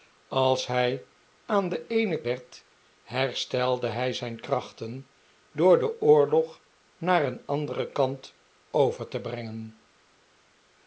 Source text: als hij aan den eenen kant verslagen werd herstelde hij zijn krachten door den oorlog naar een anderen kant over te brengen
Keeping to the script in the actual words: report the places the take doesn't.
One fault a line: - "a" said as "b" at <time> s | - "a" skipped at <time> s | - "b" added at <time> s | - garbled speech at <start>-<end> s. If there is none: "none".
- "kant verslagen" skipped at 2.2 s